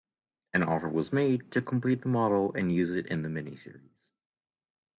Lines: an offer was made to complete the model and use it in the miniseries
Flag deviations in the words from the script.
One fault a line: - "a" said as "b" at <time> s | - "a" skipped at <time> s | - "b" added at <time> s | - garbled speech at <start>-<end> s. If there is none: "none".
none